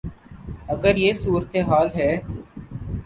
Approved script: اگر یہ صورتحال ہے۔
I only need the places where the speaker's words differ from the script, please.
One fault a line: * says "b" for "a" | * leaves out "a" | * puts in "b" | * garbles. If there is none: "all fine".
all fine